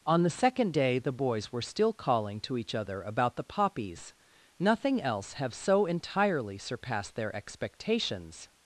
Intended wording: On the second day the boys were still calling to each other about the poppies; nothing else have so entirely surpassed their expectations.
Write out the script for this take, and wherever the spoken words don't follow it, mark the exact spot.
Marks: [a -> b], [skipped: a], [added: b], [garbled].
On the second day the boys were still calling to each other about the poppies; nothing else have so entirely surpassed their expectations.